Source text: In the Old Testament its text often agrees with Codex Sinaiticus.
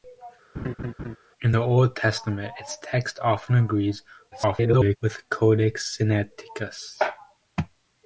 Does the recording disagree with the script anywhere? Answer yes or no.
yes